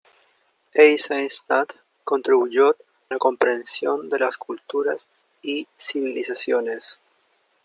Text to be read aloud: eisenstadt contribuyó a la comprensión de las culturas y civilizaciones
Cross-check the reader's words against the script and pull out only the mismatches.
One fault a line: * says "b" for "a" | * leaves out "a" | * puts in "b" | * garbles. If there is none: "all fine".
* leaves out "a"